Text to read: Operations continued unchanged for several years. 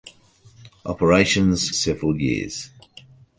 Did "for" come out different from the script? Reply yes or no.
yes